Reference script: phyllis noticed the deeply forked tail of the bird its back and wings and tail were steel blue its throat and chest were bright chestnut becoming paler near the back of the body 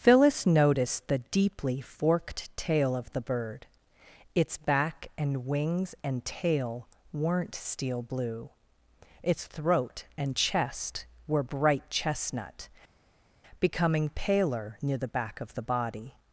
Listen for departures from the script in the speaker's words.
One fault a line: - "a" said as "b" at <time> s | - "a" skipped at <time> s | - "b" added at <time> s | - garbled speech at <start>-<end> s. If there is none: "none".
- "were" said as "weren't" at 7.1 s